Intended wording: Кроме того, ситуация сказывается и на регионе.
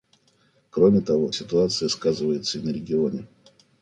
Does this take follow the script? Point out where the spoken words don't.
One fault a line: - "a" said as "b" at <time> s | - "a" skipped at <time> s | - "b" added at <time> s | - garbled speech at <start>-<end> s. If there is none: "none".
none